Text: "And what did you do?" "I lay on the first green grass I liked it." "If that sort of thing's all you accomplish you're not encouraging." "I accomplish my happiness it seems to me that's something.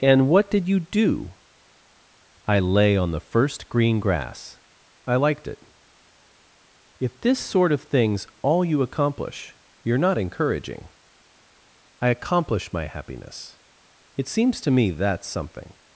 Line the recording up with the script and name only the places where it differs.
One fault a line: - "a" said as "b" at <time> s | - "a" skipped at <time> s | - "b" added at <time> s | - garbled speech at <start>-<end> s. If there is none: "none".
- "that" said as "this" at 7.2 s